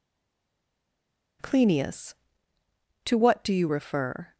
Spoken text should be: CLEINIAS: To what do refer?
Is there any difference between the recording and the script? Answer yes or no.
yes